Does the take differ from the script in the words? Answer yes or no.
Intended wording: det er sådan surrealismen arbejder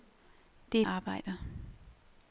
yes